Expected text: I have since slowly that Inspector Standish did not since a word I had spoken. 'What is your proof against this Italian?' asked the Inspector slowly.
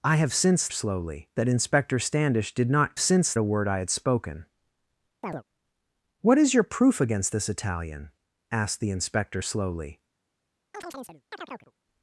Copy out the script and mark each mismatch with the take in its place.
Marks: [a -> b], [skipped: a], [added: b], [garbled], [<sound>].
I have since slowly that Inspector Standish did not since a word I had spoken. [chirp] 'What is your proof against this Italian?' asked the Inspector slowly. [chirp]